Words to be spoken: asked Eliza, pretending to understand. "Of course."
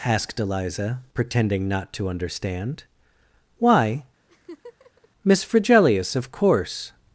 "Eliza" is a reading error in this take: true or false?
false